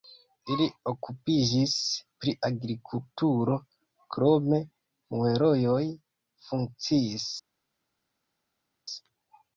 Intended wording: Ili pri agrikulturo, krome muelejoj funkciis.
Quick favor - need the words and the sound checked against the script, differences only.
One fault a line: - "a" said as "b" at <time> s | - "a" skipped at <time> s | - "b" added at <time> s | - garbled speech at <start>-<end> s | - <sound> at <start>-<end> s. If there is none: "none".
- "okupiĝis" added at 0.9 s